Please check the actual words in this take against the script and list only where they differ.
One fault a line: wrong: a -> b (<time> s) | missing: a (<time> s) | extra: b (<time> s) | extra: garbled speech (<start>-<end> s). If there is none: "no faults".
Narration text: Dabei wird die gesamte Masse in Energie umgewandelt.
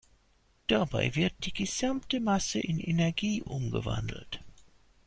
no faults